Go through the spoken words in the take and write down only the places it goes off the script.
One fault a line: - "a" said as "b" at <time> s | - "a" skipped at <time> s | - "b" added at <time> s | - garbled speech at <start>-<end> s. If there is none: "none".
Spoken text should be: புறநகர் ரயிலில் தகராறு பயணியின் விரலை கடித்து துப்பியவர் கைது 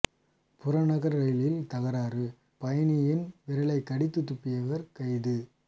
none